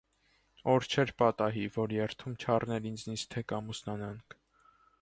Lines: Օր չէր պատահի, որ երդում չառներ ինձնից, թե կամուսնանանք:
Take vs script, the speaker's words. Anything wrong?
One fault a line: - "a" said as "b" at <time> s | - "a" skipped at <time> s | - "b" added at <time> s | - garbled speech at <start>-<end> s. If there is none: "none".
none